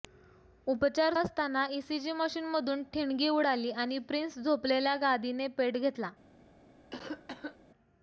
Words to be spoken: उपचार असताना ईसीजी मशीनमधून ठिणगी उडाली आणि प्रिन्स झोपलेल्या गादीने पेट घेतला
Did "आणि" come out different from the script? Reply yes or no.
no